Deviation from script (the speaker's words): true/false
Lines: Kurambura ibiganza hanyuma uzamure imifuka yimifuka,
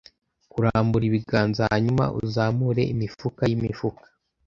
false